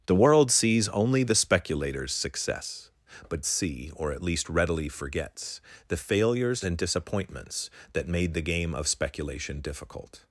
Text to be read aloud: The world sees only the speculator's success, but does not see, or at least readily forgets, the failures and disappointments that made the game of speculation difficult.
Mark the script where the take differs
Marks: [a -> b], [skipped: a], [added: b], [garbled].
The world sees only the speculator's success, but [skipped: does not] see, or at least readily forgets, the failures and disappointments that made the game of speculation difficult.